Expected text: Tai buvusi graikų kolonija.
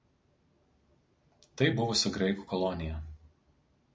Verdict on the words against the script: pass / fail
pass